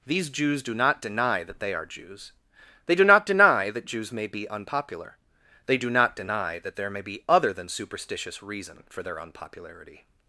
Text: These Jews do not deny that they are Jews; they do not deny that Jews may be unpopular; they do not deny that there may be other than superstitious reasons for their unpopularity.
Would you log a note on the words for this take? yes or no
yes